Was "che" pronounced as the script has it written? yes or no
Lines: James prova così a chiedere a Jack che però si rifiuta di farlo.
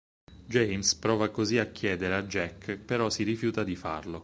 no